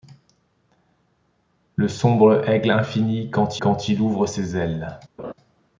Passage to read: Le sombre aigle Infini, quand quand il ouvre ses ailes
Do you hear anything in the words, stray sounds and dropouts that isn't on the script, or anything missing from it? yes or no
yes